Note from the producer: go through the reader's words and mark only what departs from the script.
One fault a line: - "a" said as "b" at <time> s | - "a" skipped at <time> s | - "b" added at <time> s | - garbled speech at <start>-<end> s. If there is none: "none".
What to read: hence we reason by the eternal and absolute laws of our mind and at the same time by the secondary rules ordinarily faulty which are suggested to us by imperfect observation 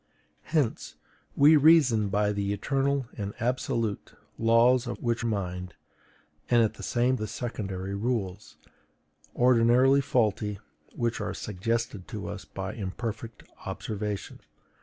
- "our" said as "which" at 5.0 s
- "time by" skipped at 7.2 s